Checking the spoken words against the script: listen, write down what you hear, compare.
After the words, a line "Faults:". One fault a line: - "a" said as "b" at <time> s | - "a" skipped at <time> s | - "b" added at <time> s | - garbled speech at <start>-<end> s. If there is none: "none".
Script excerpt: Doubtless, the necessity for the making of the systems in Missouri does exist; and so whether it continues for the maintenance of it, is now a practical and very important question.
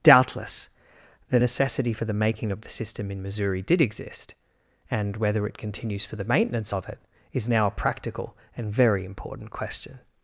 Doubtless, the necessity for the making of the system in Missouri did exist; and whether it continues for the maintenance of it, is now a practical and very important question.
Faults:
- "systems" said as "system" at 2.7 s
- "does" said as "did" at 3.6 s
- "so" skipped at 5.2 s